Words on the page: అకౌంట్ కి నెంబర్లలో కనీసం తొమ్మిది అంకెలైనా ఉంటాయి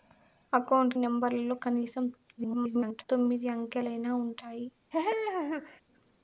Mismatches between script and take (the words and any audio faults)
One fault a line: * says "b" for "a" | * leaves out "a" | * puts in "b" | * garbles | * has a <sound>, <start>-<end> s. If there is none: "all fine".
* leaves out "కి"
* garbles
* has a laugh, 4.9-5.8 s